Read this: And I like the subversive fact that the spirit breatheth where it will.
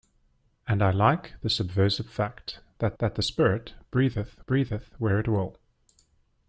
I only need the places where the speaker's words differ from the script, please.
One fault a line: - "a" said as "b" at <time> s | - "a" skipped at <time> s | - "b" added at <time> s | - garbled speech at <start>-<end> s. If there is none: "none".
- "that" added at 3.0 s
- "breatheth" added at 4.5 s